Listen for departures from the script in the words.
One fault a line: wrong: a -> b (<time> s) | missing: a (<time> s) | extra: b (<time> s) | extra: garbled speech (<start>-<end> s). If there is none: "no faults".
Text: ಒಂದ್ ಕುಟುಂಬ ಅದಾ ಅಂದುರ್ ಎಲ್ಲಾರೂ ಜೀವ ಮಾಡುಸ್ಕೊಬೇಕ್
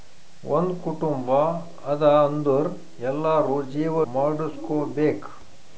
no faults